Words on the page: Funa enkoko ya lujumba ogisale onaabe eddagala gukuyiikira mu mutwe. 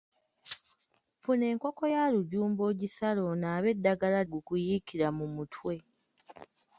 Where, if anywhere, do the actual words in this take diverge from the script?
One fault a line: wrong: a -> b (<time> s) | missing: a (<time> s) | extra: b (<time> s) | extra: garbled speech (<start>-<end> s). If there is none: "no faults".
no faults